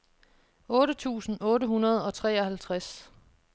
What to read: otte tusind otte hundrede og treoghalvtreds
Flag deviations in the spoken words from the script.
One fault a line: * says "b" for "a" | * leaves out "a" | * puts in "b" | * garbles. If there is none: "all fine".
all fine